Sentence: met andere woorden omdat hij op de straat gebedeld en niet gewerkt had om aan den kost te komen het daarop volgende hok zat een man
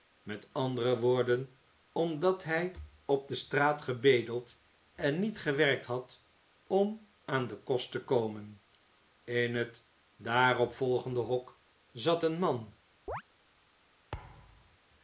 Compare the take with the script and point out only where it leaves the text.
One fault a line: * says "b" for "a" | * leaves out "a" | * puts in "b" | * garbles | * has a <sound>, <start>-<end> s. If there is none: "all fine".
* puts in "in"
* has a chirp, 13.1-13.2 s
* has a thud, 14.1-14.8 s